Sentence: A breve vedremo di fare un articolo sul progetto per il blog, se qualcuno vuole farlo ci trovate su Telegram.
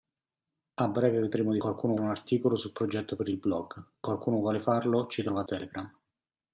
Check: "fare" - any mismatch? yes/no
yes